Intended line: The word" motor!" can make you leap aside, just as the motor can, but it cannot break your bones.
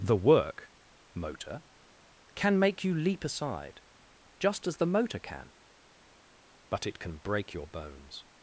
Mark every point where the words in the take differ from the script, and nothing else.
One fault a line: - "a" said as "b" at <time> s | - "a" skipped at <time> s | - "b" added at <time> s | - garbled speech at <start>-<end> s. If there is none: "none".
- "word" said as "work" at 0.1 s
- "cannot" said as "can" at 7.0 s